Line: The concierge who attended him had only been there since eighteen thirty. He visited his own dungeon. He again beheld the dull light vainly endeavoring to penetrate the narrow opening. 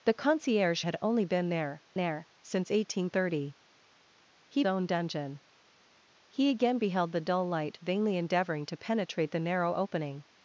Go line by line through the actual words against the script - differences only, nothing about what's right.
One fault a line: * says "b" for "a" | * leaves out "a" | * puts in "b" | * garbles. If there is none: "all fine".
* leaves out "who attended him"
* puts in "there"
* leaves out "visited his"